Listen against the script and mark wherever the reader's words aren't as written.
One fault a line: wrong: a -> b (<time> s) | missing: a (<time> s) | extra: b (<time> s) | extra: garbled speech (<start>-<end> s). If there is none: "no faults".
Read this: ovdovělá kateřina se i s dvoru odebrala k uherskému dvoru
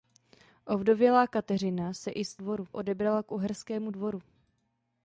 no faults